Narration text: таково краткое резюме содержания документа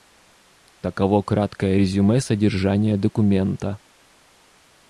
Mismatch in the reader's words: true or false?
false